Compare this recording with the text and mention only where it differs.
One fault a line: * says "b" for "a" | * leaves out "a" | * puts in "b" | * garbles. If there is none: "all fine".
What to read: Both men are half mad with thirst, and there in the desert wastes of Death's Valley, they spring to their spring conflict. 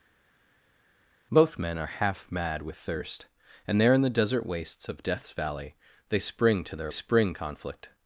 all fine